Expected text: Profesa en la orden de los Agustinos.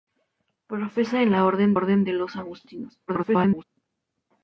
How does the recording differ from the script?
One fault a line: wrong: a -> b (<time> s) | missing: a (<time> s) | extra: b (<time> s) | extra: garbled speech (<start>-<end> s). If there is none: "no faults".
extra: orden (1.7 s)
extra: garbled speech (3.1-3.6 s)